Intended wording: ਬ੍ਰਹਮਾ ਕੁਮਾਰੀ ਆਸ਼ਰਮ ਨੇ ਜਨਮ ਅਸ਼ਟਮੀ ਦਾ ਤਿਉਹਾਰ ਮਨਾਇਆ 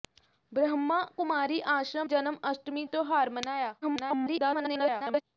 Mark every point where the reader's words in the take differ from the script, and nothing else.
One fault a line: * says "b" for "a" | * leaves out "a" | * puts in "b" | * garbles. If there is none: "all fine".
* leaves out "ਨੇ"
* leaves out "ਦਾ"
* garbles